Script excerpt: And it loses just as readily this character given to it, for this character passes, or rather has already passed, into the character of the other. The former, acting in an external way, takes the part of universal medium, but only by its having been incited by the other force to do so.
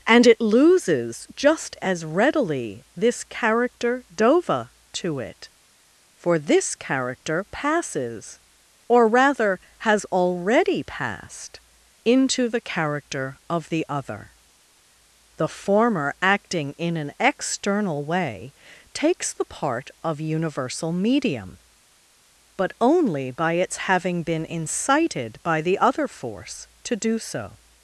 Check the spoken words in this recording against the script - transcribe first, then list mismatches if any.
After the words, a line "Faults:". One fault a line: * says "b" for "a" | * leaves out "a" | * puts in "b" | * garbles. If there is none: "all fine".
And it loses just as readily this character dova to it, for this character passes, or rather has already passed, into the character of the other. The former, acting in an external way, takes the part of universal medium, but only by its having been incited by the other force to do so.
Faults:
* says "dova" for "given"